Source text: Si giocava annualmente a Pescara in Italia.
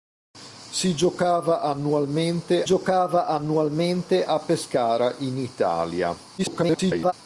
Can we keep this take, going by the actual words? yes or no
no